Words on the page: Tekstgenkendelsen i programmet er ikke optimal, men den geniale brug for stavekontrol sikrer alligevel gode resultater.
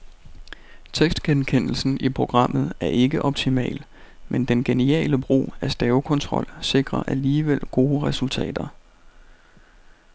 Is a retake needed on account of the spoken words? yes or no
yes